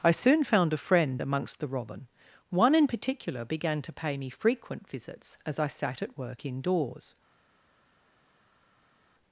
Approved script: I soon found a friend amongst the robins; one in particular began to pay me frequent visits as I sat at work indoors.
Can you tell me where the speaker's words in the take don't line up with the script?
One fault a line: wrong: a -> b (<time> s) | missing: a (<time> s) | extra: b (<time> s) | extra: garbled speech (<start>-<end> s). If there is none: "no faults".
wrong: robins -> robin (1.7 s)